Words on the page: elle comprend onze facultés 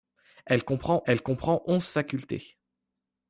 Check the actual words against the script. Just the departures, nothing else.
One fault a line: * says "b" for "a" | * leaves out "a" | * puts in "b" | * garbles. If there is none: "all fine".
* puts in "elle comprend"